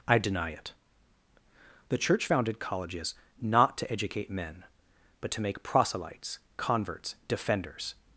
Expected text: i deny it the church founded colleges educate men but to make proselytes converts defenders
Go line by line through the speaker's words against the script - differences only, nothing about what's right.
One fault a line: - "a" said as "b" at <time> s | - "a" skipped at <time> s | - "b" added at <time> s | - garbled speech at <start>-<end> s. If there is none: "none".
- "not to" added at 3.4 s